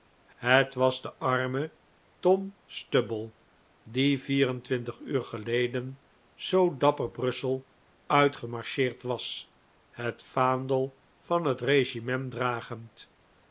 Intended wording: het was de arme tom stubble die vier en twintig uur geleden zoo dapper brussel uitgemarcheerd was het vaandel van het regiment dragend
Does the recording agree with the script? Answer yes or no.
yes